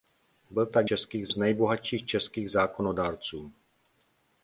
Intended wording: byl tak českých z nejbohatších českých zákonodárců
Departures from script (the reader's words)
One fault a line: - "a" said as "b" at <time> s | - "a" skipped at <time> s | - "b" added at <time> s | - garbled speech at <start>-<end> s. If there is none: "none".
none